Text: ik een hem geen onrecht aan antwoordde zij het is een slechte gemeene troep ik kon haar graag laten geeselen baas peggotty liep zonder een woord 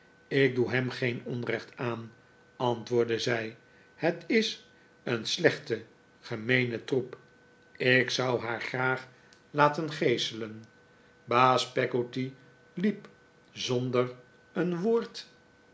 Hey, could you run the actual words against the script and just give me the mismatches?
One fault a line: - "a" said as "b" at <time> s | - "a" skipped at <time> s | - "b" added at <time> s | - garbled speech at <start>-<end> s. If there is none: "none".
- "een" said as "doe" at 0.6 s
- "kon" said as "zou" at 8.1 s